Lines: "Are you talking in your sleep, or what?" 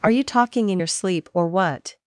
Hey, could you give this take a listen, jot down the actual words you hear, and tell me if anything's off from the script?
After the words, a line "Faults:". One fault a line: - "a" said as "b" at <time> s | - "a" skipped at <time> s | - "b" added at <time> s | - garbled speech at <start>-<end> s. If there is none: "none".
"Are you talking in your sleep, or what?"
Faults:
none